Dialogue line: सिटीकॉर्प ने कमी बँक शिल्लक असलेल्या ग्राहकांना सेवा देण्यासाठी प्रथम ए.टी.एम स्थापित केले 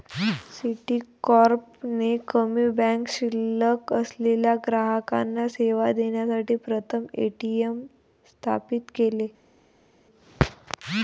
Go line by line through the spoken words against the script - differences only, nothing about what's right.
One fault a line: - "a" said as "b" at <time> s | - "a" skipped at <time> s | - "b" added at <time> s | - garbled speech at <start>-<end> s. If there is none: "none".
none